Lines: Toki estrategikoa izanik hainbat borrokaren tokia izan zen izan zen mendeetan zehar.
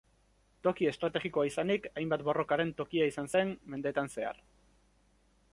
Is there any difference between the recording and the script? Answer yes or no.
yes